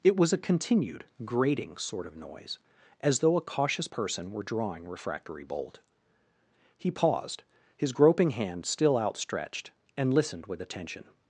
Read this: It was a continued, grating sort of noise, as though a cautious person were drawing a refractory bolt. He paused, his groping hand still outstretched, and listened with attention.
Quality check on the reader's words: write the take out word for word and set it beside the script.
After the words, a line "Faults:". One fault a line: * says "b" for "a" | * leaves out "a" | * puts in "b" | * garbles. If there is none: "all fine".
It was a continued, grating sort of noise, as though a cautious person were drawing refractory bolt. He paused, his groping hand still outstretched, and listened with attention.
Faults:
* leaves out "a"